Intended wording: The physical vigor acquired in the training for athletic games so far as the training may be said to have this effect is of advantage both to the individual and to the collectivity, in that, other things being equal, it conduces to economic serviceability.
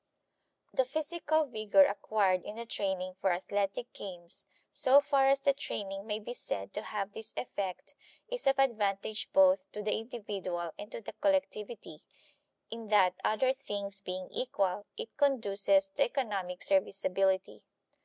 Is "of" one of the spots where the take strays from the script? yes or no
no